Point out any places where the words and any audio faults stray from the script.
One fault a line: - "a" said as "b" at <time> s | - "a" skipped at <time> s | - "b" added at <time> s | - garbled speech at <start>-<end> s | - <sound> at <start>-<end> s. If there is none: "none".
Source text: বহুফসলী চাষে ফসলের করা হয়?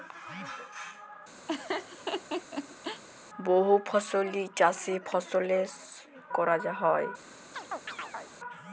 - laugh at 1.5-3.0 s
- chirp at 7.5-8.3 s